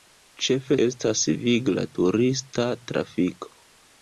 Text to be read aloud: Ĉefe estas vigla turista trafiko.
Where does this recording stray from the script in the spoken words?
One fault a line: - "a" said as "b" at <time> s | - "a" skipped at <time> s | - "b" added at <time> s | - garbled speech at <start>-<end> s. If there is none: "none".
none